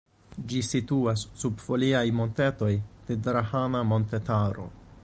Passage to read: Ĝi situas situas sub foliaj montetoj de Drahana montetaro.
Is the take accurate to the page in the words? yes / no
no